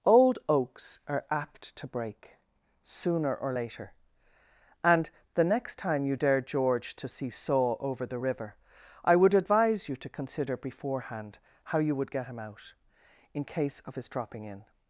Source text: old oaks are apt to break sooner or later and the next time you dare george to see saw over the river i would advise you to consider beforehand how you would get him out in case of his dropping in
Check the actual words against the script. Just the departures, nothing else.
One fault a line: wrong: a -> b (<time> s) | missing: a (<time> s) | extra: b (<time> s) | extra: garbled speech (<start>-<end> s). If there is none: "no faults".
no faults